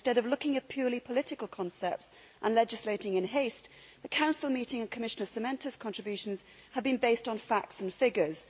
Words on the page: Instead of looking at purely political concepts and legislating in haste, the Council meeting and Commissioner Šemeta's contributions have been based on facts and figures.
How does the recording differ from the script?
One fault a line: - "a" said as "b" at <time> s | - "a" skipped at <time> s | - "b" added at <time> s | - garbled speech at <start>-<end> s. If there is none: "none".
none